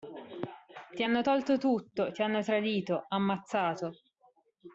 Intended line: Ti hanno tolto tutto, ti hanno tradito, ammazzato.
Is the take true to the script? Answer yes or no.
yes